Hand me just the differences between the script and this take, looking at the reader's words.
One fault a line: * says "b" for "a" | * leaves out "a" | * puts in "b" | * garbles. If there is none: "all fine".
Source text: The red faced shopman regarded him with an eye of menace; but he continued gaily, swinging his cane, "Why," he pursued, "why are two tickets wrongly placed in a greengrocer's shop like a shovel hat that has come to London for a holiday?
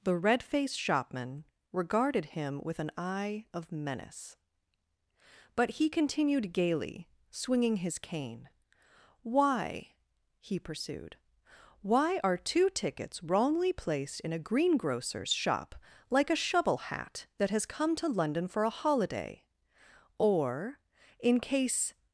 * puts in "Or in case"